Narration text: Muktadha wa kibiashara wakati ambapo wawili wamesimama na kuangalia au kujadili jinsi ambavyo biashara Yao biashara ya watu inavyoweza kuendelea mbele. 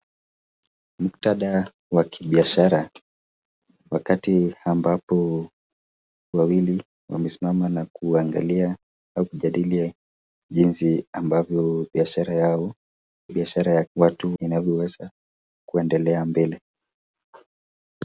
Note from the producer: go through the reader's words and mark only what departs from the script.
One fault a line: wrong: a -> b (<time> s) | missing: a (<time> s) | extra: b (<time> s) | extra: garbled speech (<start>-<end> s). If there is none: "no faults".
no faults